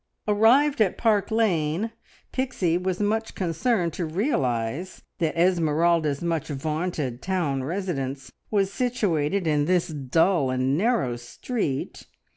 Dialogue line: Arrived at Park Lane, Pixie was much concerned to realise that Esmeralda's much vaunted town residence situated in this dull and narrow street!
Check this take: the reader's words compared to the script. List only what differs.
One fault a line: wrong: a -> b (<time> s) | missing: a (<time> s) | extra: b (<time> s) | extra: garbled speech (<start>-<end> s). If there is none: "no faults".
extra: was (8.5 s)